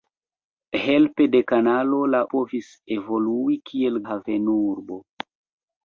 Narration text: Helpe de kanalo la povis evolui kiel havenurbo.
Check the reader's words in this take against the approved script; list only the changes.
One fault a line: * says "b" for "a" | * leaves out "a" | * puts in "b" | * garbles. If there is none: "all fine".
all fine